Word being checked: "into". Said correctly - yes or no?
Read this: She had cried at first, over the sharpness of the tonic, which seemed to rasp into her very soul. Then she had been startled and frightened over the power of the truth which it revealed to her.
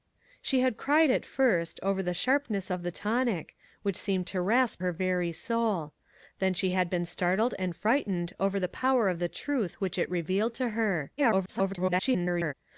no